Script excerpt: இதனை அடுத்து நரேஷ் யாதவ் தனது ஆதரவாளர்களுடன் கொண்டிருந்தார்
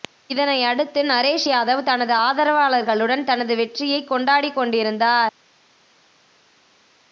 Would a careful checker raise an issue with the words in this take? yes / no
yes